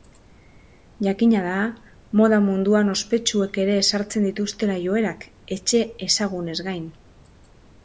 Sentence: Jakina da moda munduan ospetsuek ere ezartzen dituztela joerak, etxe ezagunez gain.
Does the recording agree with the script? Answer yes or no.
yes